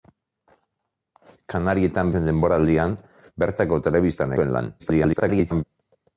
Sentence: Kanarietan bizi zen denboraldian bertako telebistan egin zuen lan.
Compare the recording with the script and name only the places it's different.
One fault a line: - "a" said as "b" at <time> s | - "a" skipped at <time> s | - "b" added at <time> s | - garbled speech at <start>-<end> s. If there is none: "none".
- "bizi" skipped at 2.1 s
- "egin" skipped at 4.4 s
- garbled speech at 4.8-5.6 s